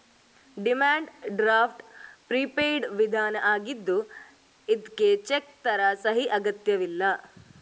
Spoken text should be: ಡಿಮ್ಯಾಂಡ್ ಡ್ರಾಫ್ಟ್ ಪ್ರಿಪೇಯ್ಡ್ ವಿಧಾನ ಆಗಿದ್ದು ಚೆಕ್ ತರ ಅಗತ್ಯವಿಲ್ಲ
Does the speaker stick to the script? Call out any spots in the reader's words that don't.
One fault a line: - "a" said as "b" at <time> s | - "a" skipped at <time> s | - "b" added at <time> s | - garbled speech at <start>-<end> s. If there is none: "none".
- "ಇದ್ಕೆ" added at 4.7 s
- "ಸಹಿ" added at 6.0 s